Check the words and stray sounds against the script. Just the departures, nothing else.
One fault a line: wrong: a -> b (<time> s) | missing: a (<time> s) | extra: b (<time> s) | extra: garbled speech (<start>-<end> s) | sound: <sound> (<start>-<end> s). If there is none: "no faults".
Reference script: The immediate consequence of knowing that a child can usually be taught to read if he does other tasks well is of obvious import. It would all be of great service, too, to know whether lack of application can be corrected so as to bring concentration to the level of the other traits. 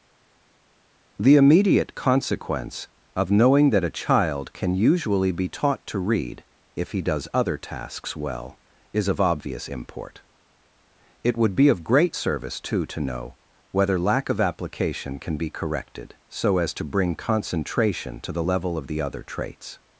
missing: all (11.5 s)